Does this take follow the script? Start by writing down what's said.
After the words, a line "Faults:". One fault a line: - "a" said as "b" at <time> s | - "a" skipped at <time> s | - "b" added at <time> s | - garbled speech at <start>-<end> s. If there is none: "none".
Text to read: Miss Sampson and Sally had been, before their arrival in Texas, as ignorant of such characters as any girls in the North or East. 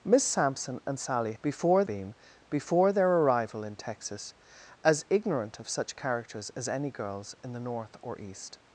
Miss Sampson and Sally before been, before their arrival in Texas, as ignorant of such characters as any girls in the North or East.
Faults:
- "had" said as "before" at 1.4 s